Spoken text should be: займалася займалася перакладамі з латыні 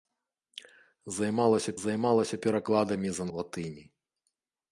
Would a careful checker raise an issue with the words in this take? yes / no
no